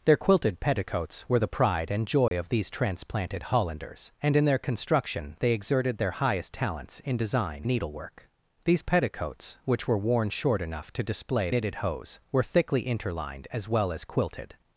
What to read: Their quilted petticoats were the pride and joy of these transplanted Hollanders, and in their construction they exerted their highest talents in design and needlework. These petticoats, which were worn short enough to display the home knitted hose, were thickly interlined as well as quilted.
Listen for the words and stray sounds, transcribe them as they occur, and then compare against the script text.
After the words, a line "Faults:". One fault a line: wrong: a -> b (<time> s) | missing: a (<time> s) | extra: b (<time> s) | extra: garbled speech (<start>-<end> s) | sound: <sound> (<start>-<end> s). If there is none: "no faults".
Their quilted petticoats were the pride and joy of these transplanted Hollanders, and in their construction they exerted their highest talents in design needlework. These petticoats, which were worn short enough to display knitted hose, were thickly interlined as well as quilted.
Faults:
sound: dropout (2.3-2.3 s)
missing: and (7.7 s)
missing: the home (11.5 s)